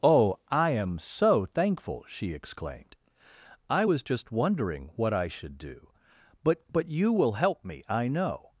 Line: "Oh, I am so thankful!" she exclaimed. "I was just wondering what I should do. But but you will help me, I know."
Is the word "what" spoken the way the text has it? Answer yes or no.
yes